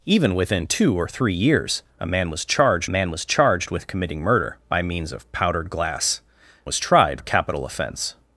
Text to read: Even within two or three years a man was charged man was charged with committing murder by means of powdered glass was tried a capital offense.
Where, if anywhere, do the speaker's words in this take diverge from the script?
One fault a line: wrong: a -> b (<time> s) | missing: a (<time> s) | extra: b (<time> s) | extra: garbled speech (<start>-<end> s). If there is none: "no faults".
no faults